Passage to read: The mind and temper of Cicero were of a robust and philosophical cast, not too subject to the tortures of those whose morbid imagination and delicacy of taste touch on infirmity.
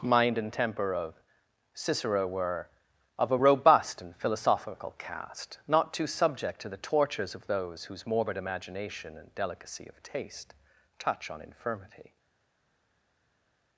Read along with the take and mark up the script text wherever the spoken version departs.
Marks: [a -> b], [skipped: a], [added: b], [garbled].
[skipped: The] mind and temper of Cicero were of a robust and philosophical cast, not too subject to the tortures of those whose morbid imagination and delicacy of taste touch on infirmity.